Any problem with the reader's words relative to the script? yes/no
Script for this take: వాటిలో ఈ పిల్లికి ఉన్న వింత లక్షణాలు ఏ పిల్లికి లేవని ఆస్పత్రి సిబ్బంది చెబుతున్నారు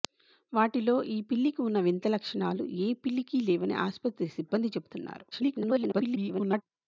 yes